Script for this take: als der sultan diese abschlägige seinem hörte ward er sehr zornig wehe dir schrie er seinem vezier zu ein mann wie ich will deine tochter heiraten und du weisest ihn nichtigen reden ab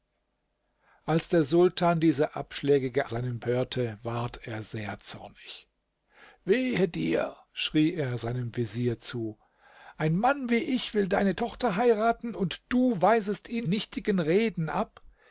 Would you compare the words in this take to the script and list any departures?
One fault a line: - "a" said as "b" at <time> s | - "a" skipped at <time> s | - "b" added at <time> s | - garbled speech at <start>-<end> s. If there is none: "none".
none